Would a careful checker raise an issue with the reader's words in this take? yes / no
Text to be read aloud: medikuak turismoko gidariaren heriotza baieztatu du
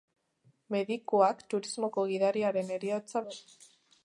yes